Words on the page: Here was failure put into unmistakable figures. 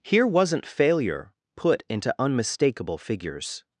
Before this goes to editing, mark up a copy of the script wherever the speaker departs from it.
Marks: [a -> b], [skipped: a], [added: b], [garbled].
Here [was -> wasn't] failure put into unmistakable figures.